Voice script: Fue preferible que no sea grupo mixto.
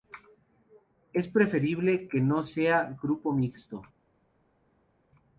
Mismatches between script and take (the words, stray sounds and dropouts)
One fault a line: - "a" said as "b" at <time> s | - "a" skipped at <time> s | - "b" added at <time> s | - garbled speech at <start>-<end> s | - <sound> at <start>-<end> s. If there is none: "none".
- "Fue" said as "Es" at 1.1 s